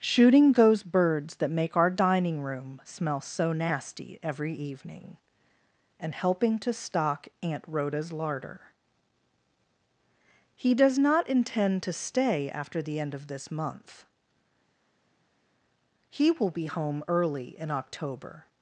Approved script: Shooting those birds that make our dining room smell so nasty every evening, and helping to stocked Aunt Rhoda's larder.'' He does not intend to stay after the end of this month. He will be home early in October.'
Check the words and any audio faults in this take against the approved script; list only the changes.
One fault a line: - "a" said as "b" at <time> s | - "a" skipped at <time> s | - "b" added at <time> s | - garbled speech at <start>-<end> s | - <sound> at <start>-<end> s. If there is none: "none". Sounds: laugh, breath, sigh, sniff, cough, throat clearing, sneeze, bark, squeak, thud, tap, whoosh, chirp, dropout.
- "stocked" said as "stock" at 6.7 s